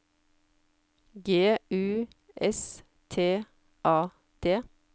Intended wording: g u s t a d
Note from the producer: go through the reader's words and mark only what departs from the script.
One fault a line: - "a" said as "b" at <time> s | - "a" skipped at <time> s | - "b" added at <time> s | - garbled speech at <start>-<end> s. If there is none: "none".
none